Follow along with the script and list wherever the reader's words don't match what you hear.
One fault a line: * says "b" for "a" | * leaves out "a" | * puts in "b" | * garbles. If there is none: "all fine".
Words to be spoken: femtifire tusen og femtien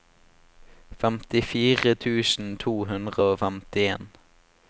* puts in "to hundre"